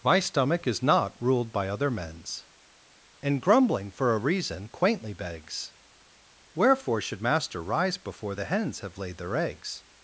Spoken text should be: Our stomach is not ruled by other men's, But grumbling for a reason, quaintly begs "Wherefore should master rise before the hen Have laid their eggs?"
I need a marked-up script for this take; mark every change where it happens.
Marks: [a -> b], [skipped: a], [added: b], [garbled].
[Our -> My] stomach is not ruled by other men's, [But -> And] grumbling for a reason, quaintly begs "Wherefore should master rise before the [hen -> hens] Have laid their eggs?"